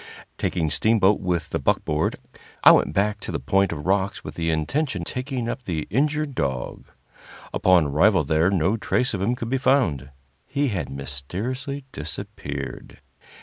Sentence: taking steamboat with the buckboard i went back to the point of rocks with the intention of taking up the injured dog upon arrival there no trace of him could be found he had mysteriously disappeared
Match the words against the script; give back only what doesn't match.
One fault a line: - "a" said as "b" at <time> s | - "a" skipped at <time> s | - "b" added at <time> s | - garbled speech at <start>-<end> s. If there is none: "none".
- "of" skipped at 5.0 s